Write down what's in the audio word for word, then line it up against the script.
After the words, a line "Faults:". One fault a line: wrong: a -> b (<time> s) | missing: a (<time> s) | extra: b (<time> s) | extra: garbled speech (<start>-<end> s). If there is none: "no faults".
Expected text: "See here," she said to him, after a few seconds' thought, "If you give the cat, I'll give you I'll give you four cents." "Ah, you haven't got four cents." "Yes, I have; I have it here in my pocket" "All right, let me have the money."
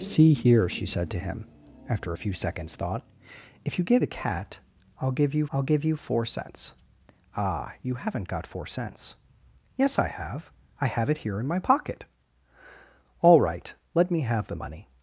"See here," she said to him, after a few seconds' thought, "If you give the cat, I'll give you I'll give you four cents." "Ah, you haven't got four cents." "Yes, I have; I have it here in my pocket" "All right, let me have the money."
Faults:
no faults